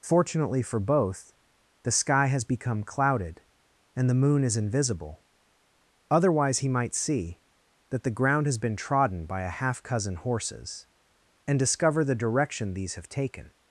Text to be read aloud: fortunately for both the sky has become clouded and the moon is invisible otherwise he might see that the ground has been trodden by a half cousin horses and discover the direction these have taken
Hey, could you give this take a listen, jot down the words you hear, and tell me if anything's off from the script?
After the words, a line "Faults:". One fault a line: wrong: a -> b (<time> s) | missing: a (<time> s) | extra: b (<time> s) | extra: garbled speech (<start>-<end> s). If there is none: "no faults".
fortunately for both the sky has become clouded and the moon is invisible otherwise he might see that the ground has been trodden by a half cousin horses and discover the direction these have taken
Faults:
no faults